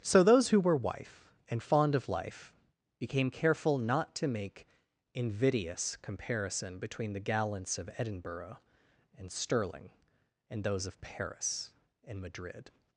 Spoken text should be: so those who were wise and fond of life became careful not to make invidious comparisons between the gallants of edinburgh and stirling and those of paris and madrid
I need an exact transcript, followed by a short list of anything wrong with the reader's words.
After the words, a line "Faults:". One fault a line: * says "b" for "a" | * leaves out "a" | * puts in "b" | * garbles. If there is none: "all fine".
so those who were wife and fond of life became careful not to make invidious comparison between the gallants of edinburgh and stirling and those of paris and madrid
Faults:
* says "wife" for "wise"
* says "comparison" for "comparisons"